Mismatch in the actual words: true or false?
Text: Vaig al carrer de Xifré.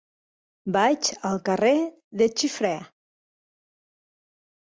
false